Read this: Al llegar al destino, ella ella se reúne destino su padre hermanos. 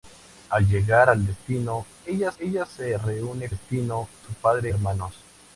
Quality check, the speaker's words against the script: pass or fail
pass